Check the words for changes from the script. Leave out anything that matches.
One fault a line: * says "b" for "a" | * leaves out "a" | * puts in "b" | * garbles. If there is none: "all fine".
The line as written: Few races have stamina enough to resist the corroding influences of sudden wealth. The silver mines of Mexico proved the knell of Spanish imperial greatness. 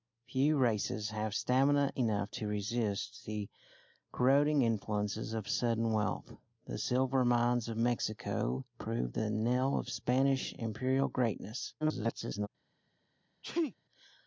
* garbles